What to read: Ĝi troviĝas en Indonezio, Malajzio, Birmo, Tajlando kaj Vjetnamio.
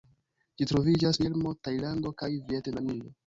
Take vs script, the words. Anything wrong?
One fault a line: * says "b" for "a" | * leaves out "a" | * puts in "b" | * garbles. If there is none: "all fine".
* leaves out "en Indonezio Malajzio"